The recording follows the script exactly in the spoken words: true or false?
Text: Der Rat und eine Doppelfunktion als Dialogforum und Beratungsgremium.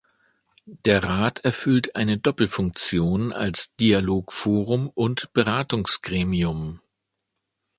false